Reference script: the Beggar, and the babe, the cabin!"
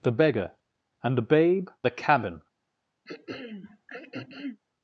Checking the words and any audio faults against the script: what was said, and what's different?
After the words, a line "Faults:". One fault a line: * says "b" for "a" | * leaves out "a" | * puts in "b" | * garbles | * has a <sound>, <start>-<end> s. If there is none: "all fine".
the Beggar, and the babe, the cabin!"
Faults:
* has a throat clearing, 3.0-4.6 s